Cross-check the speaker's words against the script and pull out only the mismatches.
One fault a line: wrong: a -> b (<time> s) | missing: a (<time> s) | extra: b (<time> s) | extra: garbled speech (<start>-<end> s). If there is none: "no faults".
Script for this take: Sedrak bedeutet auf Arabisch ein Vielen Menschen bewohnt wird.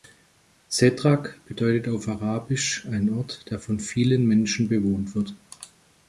extra: Ort der von (3.1 s)